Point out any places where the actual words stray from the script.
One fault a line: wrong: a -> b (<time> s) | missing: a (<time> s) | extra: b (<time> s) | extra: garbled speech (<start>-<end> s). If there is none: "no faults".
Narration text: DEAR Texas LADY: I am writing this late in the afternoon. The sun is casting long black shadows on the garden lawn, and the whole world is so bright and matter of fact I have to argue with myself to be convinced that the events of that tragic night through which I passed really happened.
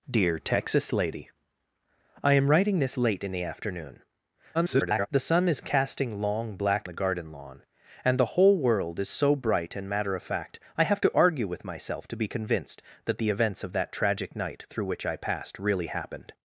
extra: garbled speech (4.5-5.1 s)
missing: shadows on (6.9 s)